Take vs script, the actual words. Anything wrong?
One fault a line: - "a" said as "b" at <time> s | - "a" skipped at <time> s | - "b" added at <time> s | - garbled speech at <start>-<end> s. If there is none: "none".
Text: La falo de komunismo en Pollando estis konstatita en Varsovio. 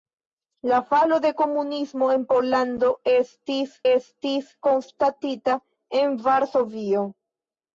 - "estis" added at 3.9 s